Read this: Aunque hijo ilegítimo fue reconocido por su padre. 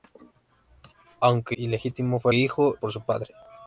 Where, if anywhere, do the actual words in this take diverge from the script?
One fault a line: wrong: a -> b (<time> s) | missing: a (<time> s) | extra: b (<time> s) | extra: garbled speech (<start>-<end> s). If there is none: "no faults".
missing: hijo (1.6 s)
wrong: reconocido -> hijo (2.3 s)